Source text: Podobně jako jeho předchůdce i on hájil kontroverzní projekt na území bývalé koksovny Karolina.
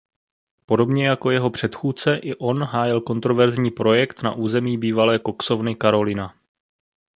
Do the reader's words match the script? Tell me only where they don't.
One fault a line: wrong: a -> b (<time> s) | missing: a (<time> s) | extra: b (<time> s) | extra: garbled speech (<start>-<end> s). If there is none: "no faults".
no faults